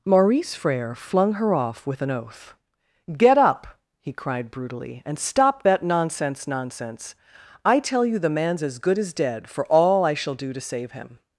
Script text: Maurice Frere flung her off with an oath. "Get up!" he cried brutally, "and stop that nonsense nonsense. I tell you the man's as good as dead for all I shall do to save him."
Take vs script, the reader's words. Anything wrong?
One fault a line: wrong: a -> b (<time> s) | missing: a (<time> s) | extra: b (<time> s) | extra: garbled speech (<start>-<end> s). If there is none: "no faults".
no faults